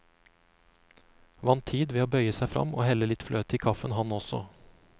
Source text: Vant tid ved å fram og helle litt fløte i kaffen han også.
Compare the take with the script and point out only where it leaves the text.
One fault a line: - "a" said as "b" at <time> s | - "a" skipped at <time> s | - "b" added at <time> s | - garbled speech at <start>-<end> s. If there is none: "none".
- "bøye seg" added at 2.1 s